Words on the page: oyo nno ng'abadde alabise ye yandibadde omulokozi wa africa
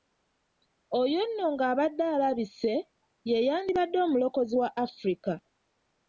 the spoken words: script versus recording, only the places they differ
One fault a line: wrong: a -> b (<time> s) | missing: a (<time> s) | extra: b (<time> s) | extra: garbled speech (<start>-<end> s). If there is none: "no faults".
no faults